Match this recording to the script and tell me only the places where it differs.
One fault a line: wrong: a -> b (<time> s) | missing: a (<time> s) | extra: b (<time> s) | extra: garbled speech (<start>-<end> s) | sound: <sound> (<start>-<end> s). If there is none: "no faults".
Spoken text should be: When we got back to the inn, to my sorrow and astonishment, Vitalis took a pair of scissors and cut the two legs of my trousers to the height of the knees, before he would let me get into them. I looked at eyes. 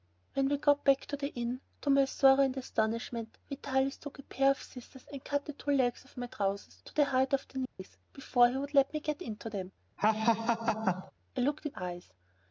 sound: dropout (7.7-7.8 s)
sound: laugh (10.0-11.1 s)